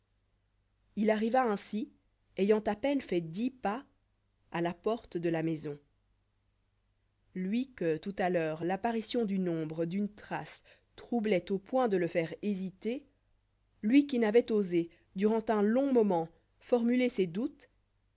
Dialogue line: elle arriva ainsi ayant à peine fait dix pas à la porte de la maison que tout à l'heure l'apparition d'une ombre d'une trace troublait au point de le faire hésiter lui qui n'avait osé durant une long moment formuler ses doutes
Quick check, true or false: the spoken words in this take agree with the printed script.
false